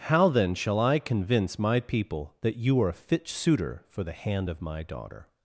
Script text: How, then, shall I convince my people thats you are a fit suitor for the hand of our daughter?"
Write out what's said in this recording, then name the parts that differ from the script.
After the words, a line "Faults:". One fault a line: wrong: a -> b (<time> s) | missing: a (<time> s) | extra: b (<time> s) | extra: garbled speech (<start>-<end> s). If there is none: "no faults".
How, then, shall I convince my people that you are a fit suitor for the hand of my daughter?"
Faults:
wrong: thats -> that (2.4 s)
wrong: our -> my (4.6 s)